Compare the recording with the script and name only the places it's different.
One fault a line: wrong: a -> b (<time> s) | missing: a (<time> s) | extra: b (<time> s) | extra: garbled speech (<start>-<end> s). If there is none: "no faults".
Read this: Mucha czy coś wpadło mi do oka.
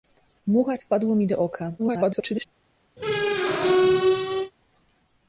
missing: czy coś (0.8 s)
extra: garbled speech (1.8-2.5 s)